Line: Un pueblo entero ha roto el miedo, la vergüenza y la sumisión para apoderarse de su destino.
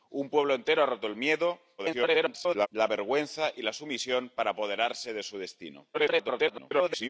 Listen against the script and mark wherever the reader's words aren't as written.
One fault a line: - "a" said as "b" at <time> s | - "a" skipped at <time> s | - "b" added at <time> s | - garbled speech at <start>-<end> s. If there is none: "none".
- garbled speech at 1.8-2.7 s
- garbled speech at 5.9-7.1 s